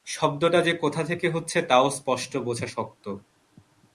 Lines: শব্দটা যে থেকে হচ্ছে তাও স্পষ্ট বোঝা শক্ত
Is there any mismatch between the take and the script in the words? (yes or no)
yes